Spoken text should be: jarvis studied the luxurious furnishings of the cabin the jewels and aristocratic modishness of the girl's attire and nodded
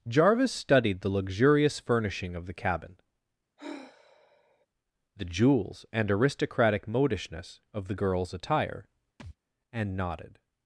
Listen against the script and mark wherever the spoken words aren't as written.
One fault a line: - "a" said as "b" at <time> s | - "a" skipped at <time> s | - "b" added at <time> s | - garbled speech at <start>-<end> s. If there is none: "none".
- "furnishings" said as "furnishing" at 1.8 s